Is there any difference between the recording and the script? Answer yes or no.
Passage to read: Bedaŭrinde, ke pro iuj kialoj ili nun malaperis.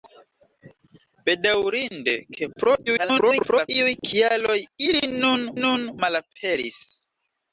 yes